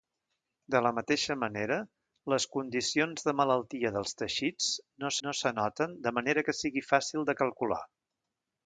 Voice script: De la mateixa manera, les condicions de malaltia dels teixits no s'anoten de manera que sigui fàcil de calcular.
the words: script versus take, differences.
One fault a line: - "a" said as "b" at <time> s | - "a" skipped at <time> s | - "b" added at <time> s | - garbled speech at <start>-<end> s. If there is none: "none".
- "no" added at 5.3 s